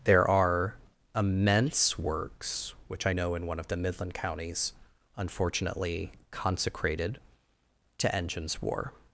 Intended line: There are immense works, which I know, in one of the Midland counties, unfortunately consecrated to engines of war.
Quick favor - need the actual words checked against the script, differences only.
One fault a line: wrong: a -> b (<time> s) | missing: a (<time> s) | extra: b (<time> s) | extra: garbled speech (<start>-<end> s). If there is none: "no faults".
missing: of (8.6 s)